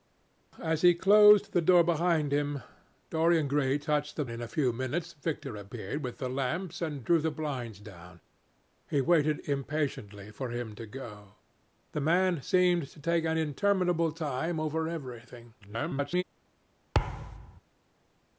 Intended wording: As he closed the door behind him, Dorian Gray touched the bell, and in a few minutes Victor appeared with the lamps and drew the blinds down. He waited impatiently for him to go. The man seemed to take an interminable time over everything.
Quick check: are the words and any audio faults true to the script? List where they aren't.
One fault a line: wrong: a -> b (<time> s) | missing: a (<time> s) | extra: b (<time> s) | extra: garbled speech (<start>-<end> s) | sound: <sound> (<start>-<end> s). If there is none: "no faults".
missing: bell and (4.2 s)
extra: garbled speech (15.6-16.2 s)
sound: thud (16.9-17.6 s)